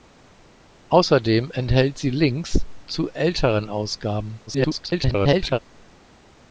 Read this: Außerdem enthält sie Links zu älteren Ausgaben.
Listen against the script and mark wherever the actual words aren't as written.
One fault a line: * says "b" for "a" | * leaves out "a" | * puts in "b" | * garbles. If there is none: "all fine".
* garbles